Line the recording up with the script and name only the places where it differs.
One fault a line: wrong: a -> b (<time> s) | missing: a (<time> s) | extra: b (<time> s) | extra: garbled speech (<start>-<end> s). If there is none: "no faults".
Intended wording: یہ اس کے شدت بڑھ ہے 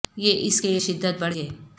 no faults